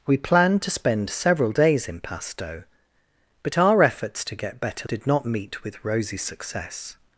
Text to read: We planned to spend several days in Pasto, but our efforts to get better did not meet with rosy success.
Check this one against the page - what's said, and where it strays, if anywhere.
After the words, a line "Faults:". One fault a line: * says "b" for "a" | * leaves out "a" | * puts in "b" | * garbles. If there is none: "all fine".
We planned to spend several days in Pasto, but our efforts to get better did not meet with rosy success.
Faults:
all fine